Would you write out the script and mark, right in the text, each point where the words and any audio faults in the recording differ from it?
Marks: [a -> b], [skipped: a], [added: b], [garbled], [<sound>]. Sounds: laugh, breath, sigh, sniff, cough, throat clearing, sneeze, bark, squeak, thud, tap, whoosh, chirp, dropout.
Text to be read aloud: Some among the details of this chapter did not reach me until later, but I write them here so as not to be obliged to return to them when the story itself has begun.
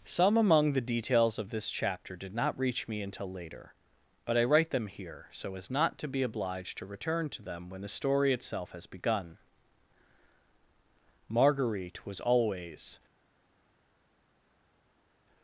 Some among the details of this chapter did not reach me until later, but I write them here so as not to be obliged to return to them when the story itself has begun. [added: Marguerite was always]